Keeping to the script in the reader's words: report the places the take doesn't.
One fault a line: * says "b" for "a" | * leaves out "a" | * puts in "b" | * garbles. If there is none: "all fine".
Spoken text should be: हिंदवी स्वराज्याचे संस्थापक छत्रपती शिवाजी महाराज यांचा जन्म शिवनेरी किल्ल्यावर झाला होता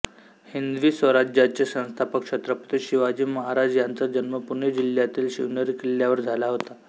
* puts in "पुणे जिल्ह्यातील"